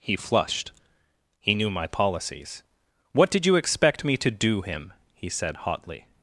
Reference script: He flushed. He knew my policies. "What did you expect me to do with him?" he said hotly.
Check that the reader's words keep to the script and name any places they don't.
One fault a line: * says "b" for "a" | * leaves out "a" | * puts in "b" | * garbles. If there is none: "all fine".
* leaves out "with"